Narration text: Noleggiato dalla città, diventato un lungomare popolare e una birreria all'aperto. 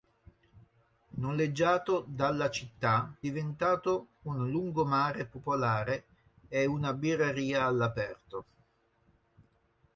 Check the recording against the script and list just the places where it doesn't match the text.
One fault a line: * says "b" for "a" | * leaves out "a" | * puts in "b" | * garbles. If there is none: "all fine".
all fine